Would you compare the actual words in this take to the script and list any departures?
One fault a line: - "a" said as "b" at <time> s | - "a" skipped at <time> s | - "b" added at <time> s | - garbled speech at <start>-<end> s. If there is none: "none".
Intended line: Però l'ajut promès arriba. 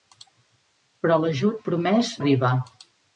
none